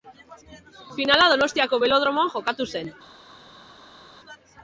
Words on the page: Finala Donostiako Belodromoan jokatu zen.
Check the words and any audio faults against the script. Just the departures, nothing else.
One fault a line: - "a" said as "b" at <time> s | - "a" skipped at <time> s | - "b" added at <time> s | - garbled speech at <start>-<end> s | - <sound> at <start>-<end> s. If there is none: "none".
none